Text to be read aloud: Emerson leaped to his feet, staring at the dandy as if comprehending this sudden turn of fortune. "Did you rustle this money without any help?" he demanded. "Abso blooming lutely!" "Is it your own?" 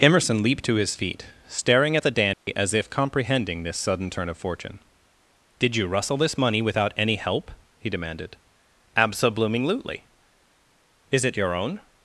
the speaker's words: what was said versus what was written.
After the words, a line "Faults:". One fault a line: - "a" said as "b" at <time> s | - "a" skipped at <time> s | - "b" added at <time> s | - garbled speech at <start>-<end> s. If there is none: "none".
Emerson leaped to his feet, staring at the dandy as if comprehending this sudden turn of fortune. "Did you rustle this money without any help?" he demanded. "Abso blooming lutely!" "Is it your own?"
Faults:
none